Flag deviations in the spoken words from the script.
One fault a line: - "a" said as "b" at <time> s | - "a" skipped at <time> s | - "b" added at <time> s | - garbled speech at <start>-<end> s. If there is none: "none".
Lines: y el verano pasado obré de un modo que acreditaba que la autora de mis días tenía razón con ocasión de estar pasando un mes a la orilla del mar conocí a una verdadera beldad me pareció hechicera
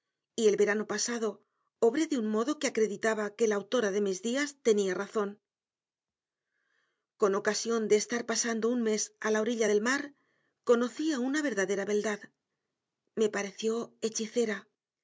none